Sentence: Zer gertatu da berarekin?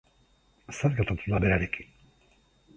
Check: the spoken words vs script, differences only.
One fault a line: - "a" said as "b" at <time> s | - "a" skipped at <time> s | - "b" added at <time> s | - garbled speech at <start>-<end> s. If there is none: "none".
none